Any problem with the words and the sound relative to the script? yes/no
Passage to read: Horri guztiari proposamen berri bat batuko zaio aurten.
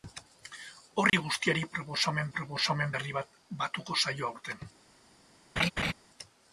yes